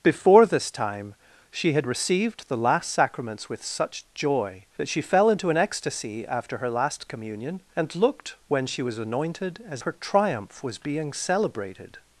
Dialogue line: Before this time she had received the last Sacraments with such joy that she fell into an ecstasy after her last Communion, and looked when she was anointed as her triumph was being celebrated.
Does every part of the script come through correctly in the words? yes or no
yes